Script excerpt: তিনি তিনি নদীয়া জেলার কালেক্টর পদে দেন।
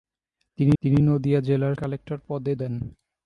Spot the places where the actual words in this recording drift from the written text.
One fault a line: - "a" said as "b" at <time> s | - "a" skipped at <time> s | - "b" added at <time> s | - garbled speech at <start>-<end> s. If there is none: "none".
none